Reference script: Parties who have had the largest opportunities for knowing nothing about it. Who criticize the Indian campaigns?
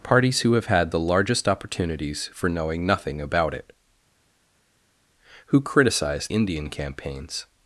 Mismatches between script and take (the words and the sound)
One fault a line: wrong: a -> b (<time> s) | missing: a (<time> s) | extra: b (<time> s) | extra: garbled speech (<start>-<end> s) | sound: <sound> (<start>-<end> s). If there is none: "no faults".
missing: the (6.3 s)